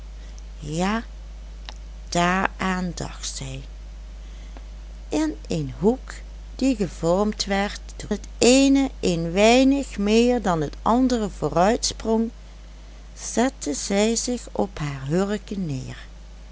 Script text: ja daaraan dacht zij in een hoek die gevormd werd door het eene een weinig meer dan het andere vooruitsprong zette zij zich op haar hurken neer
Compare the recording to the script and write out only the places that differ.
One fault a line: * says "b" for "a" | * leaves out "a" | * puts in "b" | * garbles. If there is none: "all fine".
all fine